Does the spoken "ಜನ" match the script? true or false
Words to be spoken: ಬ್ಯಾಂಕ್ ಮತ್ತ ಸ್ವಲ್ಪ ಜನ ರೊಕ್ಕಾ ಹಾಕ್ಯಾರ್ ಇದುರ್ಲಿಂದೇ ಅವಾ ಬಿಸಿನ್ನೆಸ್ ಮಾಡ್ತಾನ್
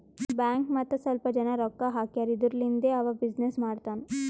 true